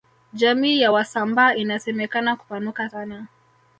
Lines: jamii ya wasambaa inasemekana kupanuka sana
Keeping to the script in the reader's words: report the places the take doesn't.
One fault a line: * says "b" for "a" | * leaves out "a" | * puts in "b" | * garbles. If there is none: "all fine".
all fine